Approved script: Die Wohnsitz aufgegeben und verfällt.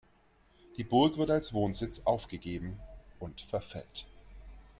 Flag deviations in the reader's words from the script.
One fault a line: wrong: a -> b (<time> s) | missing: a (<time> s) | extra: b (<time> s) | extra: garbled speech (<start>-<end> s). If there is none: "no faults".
extra: Burg wird als (0.8 s)